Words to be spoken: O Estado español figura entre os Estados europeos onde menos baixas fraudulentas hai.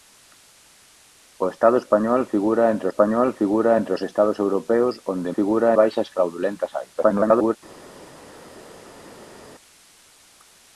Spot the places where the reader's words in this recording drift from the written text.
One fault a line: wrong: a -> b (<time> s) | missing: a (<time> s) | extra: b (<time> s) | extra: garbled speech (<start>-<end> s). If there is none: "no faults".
extra: español figura entre (2.9 s)
wrong: menos -> figura (5.4 s)
extra: garbled speech (7.0-7.6 s)